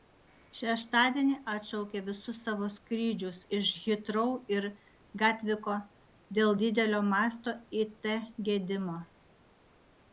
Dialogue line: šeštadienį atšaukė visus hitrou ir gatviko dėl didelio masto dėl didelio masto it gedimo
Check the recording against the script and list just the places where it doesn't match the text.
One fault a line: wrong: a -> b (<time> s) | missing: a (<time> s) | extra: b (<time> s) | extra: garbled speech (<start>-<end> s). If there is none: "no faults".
extra: savo skrydžius iš (2.5 s)
missing: dėl didelio masto (7.6 s)